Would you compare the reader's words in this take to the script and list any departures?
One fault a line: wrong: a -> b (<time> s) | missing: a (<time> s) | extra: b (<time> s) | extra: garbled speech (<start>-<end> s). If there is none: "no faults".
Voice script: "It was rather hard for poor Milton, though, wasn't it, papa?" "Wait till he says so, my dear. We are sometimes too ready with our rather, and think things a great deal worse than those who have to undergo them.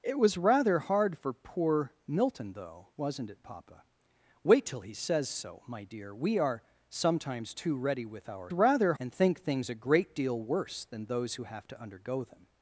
no faults